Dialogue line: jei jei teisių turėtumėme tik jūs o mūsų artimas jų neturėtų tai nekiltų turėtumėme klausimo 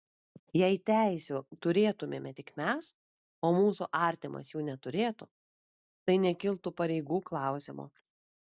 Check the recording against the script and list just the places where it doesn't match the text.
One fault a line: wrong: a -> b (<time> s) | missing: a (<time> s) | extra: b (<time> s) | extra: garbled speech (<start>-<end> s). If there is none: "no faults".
missing: jei (0.8 s)
wrong: jūs -> mes (2.6 s)
wrong: turėtumėme -> pareigų (6.8 s)